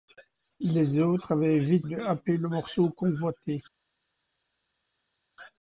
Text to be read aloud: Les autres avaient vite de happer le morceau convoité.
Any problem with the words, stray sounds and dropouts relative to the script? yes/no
no